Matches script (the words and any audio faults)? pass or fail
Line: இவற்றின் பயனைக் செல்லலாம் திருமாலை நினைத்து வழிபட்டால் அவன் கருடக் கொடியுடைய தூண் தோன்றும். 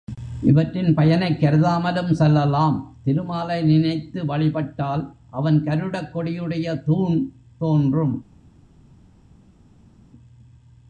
fail